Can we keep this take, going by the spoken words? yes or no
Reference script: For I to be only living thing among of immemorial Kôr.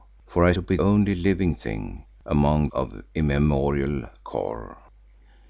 yes